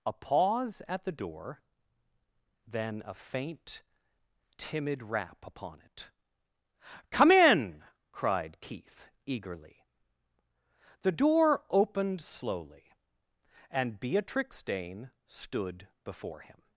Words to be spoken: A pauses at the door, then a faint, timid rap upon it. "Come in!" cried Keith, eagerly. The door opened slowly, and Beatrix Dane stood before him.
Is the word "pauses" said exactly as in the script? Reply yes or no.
no